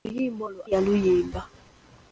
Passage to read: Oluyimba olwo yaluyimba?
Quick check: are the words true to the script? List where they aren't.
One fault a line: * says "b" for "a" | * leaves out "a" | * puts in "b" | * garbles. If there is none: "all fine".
all fine